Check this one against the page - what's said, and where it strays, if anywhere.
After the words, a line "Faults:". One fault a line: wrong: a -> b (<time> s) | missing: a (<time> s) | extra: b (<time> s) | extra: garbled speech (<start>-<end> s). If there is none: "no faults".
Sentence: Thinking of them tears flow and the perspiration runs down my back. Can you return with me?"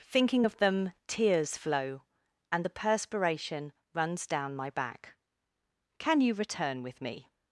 Thinking of them tears flow and the perspiration runs down my back. Can you return with me?"
Faults:
no faults